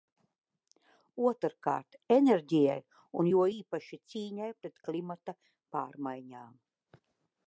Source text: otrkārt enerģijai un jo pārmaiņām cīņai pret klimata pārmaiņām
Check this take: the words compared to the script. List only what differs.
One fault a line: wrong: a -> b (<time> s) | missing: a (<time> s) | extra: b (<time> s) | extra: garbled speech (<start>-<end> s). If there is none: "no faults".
wrong: pārmaiņām -> īpaši (3.5 s)